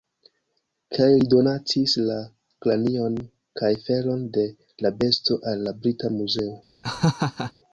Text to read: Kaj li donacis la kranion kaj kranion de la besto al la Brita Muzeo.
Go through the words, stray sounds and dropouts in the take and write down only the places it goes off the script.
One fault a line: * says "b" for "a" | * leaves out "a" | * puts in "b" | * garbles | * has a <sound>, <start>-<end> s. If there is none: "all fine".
* says "felon" for "kranion"
* has a laugh, 6.8-7.5 s